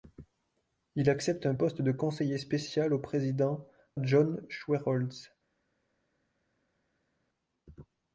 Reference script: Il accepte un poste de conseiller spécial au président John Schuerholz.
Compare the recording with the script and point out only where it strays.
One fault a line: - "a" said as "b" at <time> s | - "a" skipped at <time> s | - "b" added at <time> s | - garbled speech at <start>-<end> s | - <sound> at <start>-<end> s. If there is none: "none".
none